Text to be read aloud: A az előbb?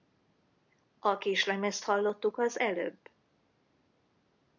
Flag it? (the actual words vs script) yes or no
yes